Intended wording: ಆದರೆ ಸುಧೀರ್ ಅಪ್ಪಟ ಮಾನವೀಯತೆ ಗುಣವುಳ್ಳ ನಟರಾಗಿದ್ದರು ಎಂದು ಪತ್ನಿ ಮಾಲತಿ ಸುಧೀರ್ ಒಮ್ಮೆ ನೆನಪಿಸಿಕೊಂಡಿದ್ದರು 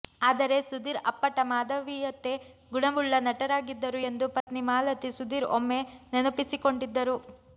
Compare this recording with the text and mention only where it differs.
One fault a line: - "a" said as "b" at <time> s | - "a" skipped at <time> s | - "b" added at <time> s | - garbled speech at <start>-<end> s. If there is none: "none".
none